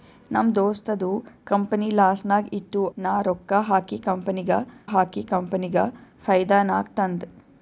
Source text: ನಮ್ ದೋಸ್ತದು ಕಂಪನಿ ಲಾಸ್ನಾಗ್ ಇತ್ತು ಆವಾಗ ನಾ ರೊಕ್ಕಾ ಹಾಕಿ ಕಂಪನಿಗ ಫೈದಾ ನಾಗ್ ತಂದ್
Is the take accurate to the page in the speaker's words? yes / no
no